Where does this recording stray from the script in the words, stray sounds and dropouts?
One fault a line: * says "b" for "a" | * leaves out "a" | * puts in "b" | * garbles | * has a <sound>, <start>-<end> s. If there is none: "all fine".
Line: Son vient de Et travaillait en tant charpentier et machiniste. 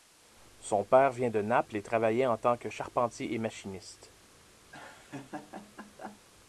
* puts in "père"
* puts in "Naples"
* puts in "que"
* has a laugh, 4.7-6.2 s